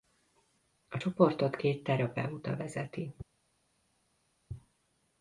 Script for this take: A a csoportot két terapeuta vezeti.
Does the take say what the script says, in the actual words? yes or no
no